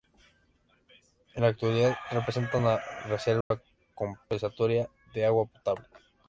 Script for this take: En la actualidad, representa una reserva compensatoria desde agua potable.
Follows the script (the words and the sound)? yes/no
no